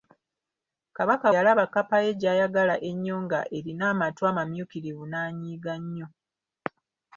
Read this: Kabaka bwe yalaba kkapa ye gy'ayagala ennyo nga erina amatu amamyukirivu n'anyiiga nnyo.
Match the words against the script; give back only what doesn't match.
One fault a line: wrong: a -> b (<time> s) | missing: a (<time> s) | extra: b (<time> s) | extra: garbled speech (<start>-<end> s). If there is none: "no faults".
missing: bwe (1.3 s)